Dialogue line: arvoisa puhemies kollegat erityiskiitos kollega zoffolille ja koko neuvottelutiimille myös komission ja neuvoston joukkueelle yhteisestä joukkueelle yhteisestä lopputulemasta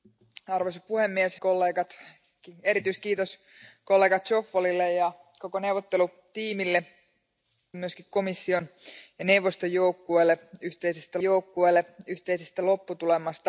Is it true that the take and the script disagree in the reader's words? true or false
false